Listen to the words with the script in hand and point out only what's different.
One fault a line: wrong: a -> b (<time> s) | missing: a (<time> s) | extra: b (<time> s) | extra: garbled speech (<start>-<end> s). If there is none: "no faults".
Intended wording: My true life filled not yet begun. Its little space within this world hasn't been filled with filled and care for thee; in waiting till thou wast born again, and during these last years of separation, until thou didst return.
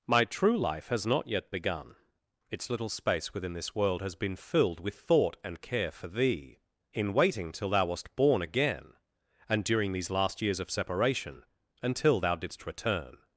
wrong: filled -> has (0.9 s)
wrong: hasn't -> has (4.0 s)
wrong: filled -> thought (4.9 s)